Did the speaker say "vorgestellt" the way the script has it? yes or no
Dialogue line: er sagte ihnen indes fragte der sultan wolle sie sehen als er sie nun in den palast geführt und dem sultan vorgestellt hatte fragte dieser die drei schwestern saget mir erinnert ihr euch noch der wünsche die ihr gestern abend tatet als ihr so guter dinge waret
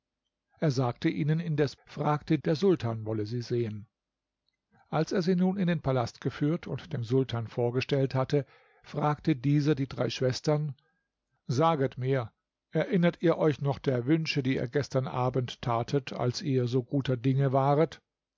yes